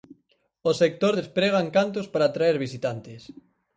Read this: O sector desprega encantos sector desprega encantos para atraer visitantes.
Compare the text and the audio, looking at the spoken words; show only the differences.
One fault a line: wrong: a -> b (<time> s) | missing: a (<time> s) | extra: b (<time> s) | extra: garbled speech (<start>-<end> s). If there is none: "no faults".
missing: sector desprega encantos (2.1 s)